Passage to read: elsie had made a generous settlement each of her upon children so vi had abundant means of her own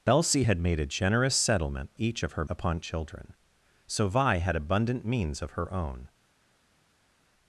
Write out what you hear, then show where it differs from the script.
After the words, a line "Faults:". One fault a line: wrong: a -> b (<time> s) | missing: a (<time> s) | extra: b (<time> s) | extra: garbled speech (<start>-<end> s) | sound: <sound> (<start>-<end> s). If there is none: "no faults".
elsie had made a generous settlement each of her upon children so vi had abundant means of her own
Faults:
no faults